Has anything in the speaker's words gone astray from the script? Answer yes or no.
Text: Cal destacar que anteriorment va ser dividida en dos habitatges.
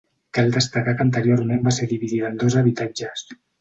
no